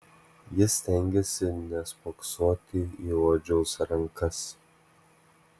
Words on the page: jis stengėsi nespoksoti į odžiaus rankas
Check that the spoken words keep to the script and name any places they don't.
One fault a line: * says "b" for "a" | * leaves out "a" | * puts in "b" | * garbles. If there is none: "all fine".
all fine